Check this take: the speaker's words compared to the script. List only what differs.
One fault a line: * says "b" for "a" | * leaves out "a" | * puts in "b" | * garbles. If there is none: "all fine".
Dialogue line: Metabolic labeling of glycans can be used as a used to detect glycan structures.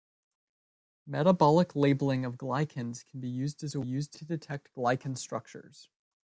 all fine